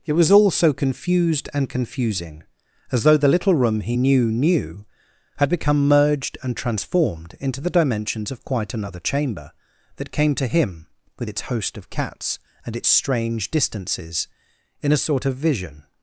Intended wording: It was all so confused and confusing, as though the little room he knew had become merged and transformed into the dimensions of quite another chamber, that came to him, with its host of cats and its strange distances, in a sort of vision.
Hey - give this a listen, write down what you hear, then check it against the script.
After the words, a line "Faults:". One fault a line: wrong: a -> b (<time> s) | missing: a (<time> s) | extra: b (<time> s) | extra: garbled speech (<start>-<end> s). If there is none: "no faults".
It was all so confused and confusing, as though the little room he knew knew had become merged and transformed into the dimensions of quite another chamber, that came to him, with its host of cats and its strange distances, in a sort of vision.
Faults:
extra: knew (4.3 s)